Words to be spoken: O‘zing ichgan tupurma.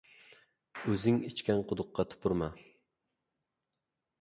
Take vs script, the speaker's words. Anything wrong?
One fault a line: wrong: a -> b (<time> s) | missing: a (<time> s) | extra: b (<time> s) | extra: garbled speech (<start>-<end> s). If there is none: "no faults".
extra: quduqqa (1.7 s)